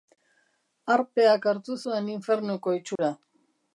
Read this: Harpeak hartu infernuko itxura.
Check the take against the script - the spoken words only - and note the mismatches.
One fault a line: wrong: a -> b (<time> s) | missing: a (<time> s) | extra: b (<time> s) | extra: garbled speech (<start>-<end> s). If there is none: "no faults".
extra: zuen (1.8 s)